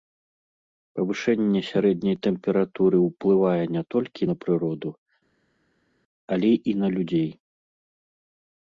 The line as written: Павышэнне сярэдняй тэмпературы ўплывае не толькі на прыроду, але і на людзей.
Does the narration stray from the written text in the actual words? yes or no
no